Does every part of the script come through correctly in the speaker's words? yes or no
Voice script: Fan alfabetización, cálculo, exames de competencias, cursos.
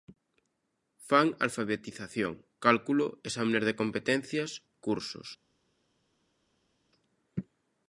yes